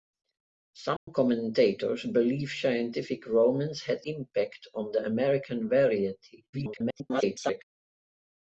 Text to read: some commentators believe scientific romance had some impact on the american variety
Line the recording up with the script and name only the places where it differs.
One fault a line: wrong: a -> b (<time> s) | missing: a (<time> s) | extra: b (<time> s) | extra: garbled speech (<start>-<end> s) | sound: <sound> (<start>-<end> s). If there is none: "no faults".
sound: dropout (1.0-1.1 s)
missing: some (4.0 s)
extra: garbled speech (6.5-7.6 s)